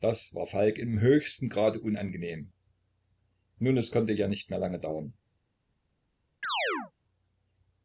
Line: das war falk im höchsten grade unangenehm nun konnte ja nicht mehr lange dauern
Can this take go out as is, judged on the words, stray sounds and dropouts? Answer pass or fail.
fail